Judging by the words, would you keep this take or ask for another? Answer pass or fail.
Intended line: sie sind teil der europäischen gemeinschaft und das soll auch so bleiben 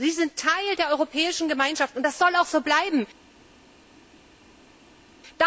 pass